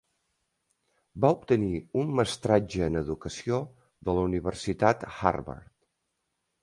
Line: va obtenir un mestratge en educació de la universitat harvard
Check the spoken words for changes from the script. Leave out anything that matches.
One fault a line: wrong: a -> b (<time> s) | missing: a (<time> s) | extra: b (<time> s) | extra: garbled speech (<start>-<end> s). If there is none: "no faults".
no faults